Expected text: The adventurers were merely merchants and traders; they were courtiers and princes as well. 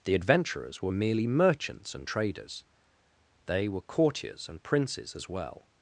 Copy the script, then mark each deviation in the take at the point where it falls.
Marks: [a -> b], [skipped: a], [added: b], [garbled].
The adventurers were merely merchants and traders; they were courtiers and princes as well.